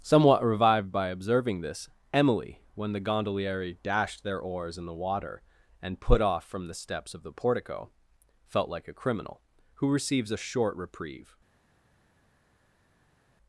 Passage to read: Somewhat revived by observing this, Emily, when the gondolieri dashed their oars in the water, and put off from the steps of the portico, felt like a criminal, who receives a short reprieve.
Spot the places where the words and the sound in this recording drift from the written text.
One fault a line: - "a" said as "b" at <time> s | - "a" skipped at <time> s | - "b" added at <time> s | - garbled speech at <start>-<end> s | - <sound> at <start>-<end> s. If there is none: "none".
none